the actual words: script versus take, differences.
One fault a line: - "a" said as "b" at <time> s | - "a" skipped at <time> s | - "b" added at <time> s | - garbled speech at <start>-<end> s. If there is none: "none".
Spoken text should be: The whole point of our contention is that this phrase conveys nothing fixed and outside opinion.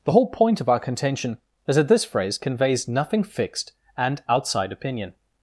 none